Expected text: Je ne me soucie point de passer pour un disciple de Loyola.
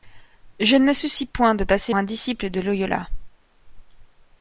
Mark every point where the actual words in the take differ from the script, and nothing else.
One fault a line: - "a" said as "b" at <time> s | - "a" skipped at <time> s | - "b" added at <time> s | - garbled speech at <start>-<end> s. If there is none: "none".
- "pour" skipped at 1.9 s